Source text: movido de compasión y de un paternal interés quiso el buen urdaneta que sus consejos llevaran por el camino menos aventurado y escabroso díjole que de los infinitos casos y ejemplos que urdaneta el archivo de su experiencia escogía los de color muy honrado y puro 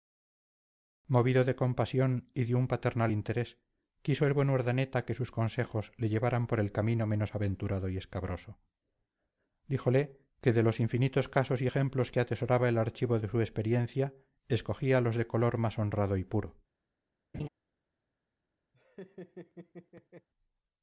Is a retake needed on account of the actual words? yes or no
yes